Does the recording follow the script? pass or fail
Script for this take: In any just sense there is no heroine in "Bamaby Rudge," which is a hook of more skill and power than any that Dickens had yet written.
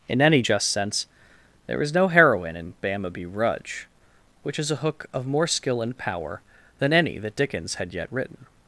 pass